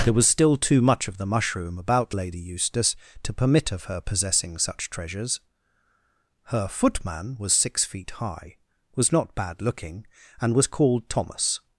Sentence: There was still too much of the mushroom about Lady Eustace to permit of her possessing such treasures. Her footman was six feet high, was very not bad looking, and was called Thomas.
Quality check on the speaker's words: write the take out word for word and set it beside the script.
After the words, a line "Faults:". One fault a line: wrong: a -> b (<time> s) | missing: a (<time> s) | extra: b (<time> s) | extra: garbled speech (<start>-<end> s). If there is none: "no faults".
There was still too much of the mushroom about Lady Eustace to permit of her possessing such treasures. Her footman was six feet high, was not bad looking, and was called Thomas.
Faults:
missing: very (9.1 s)